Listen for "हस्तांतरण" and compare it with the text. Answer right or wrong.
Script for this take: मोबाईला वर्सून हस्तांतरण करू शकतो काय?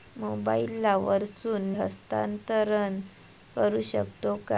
right